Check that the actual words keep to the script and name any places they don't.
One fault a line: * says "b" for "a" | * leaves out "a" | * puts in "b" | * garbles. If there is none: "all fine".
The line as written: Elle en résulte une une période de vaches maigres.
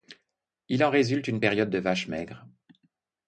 * says "Il" for "Elle"
* leaves out "une"